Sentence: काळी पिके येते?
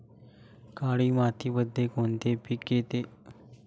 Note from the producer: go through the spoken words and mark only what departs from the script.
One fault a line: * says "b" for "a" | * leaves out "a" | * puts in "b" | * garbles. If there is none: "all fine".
* puts in "मातीमध्ये कोणते"